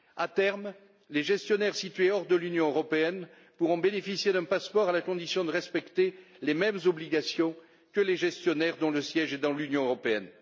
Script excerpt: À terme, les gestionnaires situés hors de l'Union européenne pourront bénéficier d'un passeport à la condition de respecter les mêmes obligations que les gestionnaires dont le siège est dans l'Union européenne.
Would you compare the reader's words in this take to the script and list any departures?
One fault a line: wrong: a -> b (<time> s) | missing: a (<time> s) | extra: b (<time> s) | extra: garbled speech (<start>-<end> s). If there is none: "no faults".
no faults